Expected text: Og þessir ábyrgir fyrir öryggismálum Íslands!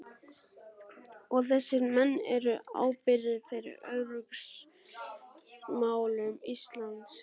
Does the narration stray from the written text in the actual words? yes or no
yes